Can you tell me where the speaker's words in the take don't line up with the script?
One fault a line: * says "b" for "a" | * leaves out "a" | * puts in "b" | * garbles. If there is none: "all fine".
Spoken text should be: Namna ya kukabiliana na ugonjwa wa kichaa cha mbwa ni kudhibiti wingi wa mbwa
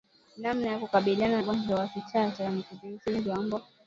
* leaves out "na"
* leaves out "mbwa"